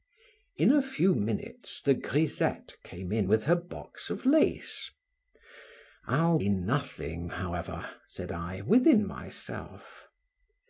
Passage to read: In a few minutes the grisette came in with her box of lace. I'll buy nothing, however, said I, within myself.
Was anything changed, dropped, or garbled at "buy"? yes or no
yes